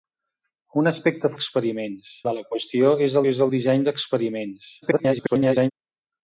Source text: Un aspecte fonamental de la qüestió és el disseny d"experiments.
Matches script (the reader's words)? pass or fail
fail